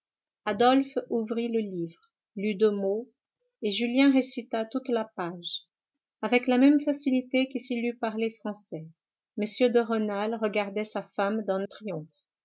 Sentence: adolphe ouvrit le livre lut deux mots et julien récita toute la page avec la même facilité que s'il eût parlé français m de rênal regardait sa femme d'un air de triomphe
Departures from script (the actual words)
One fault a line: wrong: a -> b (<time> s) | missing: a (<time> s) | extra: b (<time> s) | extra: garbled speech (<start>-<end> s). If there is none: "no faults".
missing: air de (11.7 s)